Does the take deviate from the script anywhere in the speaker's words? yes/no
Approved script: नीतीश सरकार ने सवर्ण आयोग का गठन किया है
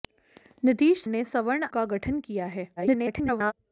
yes